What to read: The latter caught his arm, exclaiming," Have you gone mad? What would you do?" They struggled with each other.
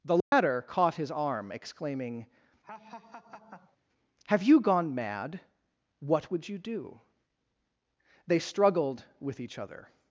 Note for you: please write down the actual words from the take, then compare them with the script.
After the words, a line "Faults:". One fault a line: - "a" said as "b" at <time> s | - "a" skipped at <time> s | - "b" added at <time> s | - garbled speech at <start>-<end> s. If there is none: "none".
The latter caught his arm, exclaiming," Have you gone mad? What would you do?" They struggled with each other.
Faults:
none